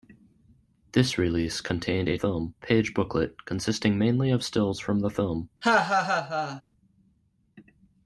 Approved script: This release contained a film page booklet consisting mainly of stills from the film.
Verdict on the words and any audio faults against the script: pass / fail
fail